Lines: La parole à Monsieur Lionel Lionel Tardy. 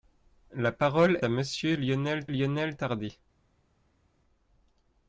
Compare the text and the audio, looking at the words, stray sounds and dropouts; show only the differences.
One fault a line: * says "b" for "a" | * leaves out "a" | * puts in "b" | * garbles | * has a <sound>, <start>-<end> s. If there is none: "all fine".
all fine